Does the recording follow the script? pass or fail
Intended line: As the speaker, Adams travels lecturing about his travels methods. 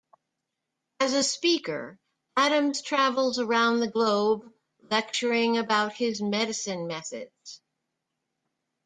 fail